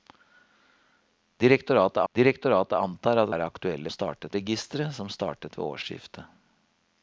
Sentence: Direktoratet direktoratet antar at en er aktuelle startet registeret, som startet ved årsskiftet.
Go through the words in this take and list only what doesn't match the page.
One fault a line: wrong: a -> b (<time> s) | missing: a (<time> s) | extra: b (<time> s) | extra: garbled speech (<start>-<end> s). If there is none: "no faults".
no faults